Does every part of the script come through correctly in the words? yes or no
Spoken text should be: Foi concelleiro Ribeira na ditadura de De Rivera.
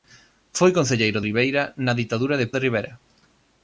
yes